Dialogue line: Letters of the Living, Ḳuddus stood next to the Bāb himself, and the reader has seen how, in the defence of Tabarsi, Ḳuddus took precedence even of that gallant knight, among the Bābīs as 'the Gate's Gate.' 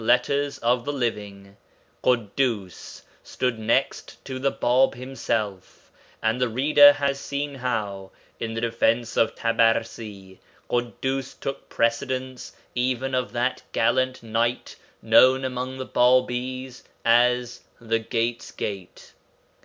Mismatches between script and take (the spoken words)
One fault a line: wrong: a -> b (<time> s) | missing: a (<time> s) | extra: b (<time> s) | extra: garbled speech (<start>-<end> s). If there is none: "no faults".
extra: known (15.0 s)